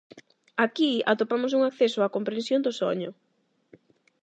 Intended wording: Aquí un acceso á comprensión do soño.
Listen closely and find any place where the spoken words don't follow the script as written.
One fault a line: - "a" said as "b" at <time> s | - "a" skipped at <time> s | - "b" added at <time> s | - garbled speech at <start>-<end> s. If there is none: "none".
- "atopamos" added at 1.1 s